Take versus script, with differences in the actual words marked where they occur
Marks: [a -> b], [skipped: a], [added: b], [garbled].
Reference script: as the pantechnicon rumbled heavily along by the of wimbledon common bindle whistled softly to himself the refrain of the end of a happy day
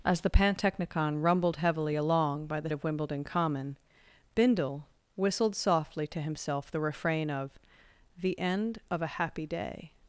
as the pantechnicon rumbled heavily along by the of wimbledon common bindle whistled softly to himself the refrain of the end of a happy day